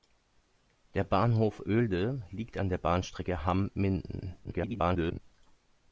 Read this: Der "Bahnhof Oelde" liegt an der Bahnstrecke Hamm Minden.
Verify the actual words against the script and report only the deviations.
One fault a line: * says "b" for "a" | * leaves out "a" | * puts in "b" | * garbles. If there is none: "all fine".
* garbles